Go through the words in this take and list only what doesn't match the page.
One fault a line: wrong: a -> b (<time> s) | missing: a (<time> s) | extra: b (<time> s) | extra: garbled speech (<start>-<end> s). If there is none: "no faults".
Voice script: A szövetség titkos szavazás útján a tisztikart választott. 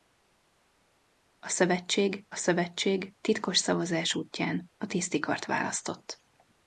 extra: szövetség (2.3 s)